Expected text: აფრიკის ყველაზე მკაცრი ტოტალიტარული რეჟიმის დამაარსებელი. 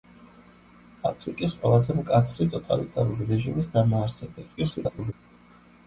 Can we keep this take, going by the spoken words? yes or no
no